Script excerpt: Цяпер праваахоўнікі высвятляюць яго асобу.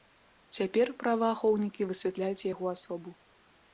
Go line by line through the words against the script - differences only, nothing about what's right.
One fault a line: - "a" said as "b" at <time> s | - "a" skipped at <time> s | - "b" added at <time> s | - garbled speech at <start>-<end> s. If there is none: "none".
none